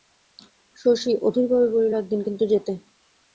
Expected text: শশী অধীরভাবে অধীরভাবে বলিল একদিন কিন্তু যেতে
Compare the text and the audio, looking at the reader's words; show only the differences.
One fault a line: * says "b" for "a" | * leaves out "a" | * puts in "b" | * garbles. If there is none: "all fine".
* leaves out "অধীরভাবে"